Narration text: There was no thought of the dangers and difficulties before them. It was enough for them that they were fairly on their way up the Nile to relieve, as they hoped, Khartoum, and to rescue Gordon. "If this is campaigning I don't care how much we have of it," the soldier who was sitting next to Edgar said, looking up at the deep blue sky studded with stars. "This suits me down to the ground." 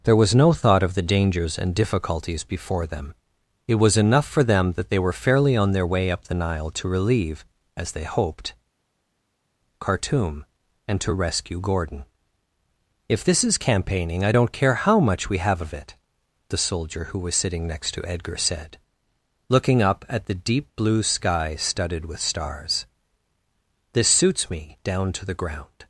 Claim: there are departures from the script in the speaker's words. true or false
false